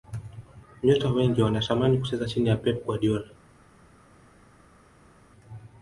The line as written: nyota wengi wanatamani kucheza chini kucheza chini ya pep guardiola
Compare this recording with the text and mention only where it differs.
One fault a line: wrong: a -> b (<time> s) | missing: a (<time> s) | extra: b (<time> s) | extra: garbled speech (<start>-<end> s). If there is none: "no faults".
missing: kucheza chini (2.5 s)